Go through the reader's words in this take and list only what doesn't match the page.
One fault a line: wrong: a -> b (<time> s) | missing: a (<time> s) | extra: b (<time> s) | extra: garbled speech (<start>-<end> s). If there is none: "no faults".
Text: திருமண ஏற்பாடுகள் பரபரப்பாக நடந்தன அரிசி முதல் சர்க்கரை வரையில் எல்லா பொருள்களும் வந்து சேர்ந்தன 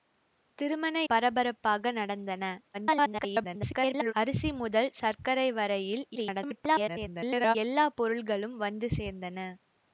missing: ஏற்பாடுகள் (0.9 s)
extra: garbled speech (2.7-4.1 s)
extra: garbled speech (6.2-7.6 s)